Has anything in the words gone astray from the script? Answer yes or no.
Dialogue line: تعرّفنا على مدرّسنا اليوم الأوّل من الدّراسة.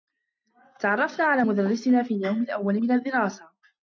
yes